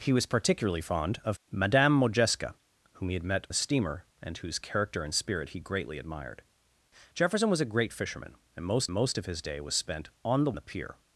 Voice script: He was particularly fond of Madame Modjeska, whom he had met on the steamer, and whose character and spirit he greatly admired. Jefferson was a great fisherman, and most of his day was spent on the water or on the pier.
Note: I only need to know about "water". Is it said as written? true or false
false